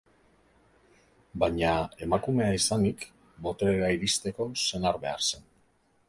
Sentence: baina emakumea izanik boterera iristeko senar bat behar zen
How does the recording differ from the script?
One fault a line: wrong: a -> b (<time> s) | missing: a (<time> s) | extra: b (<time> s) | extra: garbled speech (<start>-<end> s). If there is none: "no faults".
missing: bat (5.0 s)